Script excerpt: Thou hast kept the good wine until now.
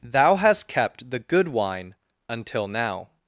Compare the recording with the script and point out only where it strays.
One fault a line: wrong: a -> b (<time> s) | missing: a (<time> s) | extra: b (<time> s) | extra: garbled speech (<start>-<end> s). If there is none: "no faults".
no faults